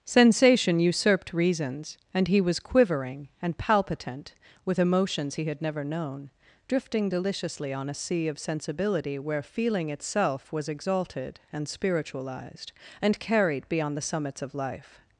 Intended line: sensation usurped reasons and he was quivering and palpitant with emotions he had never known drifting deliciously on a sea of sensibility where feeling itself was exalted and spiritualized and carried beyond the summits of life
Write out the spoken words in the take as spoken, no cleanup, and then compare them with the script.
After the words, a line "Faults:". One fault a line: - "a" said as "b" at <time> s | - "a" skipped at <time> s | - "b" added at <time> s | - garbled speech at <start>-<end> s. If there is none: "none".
sensation usurped reasons and he was quivering and palpitant with emotions he had never known drifting deliciously on a sea of sensibility where feeling itself was exalted and spiritualized and carried beyond the summits of life
Faults:
none